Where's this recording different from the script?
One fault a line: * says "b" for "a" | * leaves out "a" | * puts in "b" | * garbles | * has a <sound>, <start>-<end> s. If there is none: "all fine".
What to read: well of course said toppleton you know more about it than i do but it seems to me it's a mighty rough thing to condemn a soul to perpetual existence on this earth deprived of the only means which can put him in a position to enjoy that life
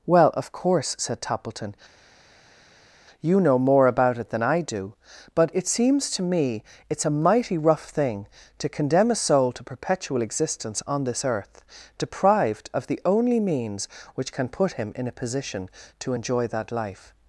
all fine